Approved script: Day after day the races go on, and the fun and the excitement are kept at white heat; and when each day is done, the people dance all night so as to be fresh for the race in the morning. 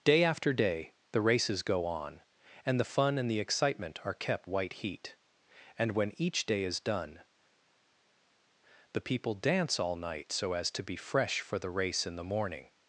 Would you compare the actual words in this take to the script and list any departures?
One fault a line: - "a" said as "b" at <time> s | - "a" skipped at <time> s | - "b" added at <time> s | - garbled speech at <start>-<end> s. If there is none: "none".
- "at" skipped at 4.5 s